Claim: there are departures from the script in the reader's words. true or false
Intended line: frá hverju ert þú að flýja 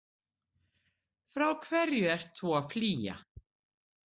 false